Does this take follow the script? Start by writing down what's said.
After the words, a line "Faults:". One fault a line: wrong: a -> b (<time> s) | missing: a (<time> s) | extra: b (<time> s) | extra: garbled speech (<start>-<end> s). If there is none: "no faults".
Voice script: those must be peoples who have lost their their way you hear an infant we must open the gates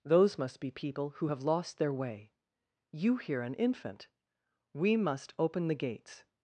those must be people who have lost their way you hear an infant we must open the gates
Faults:
wrong: peoples -> people (0.7 s)
missing: their (1.9 s)